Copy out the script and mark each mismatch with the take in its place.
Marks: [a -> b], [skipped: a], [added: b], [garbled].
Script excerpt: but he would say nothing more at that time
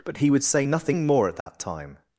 but he would say nothing more at that time